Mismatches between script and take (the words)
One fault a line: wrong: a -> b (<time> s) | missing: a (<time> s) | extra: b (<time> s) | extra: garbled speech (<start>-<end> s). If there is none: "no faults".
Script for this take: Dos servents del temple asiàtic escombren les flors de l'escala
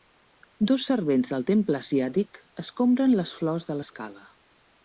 no faults